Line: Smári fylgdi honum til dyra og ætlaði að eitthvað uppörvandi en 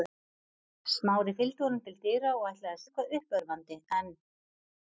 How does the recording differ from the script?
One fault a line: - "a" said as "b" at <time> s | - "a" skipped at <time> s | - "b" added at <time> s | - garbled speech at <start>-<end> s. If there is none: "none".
none